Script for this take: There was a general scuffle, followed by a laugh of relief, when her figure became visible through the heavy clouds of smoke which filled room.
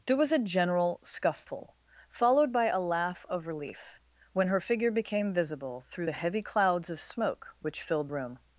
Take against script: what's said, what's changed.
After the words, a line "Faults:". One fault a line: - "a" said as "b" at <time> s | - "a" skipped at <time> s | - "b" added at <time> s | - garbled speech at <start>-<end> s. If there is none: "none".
There was a general scuffle, followed by a laugh of relief, when her figure became visible through the heavy clouds of smoke which filled room.
Faults:
none